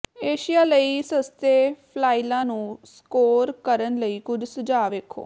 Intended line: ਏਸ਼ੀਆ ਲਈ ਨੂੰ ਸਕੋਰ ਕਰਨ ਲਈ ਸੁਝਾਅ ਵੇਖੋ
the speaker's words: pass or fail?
fail